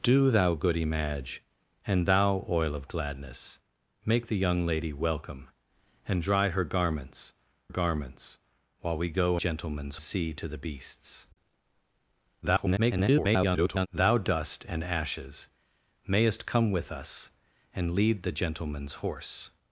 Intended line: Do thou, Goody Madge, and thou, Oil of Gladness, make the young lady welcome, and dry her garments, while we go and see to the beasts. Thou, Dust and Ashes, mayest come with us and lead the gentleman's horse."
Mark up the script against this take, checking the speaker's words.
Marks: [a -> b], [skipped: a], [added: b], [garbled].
Do thou, Goody Madge, and thou, Oil of Gladness, make the young lady welcome, and dry her garments, [added: garments] while we go [and -> gentleman's] see to the beasts. [garbled] Thou, Dust and Ashes, mayest come with us and lead the gentleman's horse."